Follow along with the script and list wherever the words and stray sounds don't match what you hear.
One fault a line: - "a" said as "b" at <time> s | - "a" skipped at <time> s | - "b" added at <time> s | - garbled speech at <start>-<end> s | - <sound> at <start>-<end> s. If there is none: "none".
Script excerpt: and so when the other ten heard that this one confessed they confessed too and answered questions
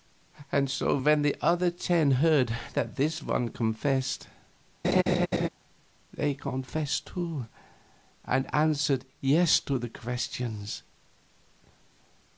- laugh at 4.8-5.5 s
- "yes to the" added at 9.2 s